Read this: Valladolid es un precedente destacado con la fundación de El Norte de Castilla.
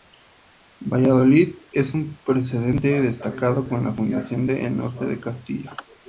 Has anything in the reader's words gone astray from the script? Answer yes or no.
no